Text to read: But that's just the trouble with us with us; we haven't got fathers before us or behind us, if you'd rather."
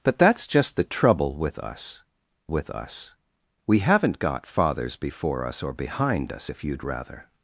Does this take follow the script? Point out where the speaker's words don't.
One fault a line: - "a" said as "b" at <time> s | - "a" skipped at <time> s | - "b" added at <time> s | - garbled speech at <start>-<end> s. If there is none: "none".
none